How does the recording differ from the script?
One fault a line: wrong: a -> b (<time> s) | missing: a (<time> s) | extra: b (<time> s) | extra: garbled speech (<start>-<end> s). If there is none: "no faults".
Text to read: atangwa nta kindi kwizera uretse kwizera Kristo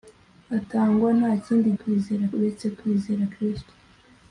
no faults